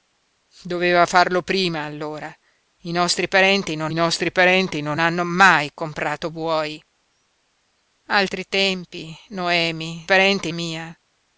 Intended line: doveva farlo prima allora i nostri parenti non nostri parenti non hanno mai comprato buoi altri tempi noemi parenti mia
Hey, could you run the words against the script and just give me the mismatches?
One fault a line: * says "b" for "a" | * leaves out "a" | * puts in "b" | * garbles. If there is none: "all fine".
all fine